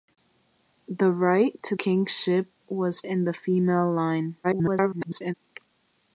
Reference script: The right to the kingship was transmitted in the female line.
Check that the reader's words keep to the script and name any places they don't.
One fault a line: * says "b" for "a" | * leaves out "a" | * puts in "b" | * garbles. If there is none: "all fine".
* leaves out "the"
* leaves out "transmitted"
* garbles